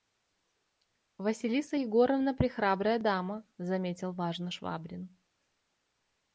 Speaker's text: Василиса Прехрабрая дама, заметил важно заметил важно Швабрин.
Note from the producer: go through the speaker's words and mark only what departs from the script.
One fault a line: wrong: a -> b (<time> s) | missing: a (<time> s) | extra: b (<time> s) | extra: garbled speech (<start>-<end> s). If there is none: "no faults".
extra: Егоровна (1.7 s)
missing: заметил важно (4.5 s)